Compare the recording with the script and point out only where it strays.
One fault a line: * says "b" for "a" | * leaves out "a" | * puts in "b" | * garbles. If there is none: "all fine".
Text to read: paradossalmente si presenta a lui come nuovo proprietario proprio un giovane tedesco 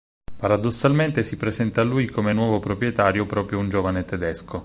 all fine